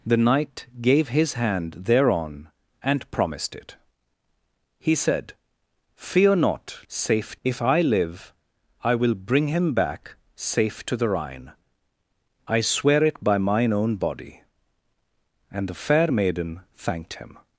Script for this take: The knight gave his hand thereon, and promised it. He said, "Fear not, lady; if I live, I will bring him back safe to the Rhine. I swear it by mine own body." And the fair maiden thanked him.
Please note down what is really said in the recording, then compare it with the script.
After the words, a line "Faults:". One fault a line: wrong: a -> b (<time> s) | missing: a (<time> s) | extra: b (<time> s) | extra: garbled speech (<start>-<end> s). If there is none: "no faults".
The knight gave his hand thereon, and promised it. He said, "Fear not, safe; if I live, I will bring him back safe to the Rhine. I swear it by mine own body." And the fair maiden thanked him.
Faults:
wrong: lady -> safe (6.9 s)